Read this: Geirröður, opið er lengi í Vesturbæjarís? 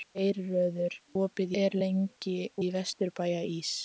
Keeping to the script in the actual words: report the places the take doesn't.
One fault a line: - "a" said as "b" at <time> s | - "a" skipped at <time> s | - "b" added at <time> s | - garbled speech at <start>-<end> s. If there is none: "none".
none